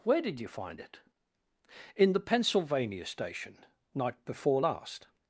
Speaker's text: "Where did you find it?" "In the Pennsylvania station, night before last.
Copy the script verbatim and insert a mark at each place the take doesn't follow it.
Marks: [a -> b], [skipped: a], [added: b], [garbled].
"Where did you find it?" "In the Pennsylvania station, night before last.